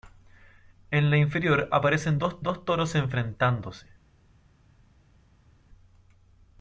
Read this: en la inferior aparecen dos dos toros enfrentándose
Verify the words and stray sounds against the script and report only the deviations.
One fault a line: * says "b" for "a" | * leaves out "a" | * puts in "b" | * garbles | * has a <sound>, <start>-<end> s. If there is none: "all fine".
all fine